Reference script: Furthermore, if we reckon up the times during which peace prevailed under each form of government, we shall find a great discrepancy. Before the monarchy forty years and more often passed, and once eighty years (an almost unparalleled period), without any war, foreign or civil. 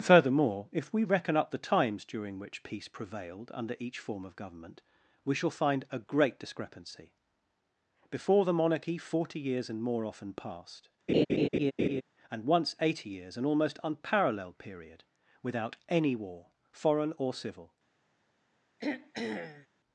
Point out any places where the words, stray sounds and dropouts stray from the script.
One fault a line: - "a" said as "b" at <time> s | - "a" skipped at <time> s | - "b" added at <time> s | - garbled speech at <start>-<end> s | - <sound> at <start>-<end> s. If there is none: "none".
- laugh at 11.1-12.0 s
- throat clearing at 18.8-19.7 s